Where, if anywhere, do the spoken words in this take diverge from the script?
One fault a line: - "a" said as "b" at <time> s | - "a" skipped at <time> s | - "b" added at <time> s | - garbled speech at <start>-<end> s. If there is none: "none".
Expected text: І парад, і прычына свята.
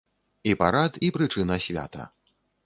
none